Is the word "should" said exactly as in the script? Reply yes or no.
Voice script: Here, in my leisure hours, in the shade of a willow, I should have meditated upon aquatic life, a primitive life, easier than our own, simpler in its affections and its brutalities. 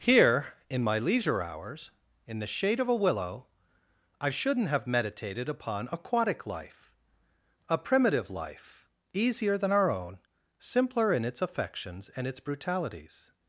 no